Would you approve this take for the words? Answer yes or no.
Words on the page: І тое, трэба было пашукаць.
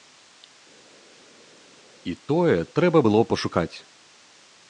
yes